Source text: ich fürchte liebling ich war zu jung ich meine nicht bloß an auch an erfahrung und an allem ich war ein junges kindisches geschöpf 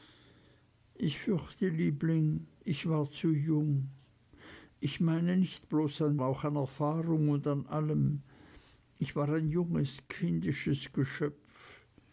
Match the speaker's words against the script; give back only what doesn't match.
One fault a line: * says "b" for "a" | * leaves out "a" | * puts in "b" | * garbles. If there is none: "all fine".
all fine